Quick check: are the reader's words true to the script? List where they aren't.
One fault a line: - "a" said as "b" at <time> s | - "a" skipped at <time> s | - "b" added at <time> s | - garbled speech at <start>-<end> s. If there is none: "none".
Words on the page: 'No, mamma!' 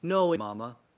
none